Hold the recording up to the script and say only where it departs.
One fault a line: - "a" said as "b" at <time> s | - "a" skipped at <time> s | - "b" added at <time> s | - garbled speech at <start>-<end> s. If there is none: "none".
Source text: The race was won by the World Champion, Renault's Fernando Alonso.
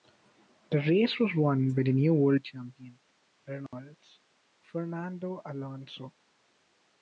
- "new" added at 1.9 s